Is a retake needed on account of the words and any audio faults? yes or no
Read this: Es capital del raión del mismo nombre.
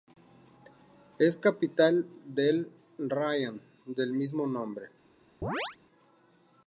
yes